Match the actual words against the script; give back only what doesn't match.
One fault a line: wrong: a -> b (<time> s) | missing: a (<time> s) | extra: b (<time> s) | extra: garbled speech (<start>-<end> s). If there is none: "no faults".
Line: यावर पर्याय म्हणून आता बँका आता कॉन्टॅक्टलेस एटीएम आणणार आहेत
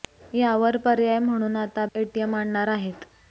missing: बँका आता कॉन्टॅक्टलेस (1.9 s)